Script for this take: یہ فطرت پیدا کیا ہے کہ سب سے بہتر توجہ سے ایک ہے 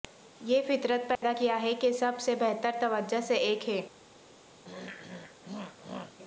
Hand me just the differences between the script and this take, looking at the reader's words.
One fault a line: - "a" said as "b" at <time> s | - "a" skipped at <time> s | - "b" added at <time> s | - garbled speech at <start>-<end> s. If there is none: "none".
none